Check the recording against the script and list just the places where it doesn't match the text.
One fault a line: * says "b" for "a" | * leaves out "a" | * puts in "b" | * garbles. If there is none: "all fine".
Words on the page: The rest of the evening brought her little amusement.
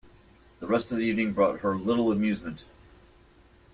all fine